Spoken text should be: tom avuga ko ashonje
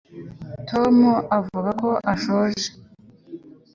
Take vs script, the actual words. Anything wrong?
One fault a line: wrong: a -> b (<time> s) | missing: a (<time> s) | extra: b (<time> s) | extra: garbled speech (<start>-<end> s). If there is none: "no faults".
no faults